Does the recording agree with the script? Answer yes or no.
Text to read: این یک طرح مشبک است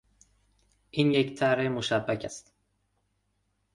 yes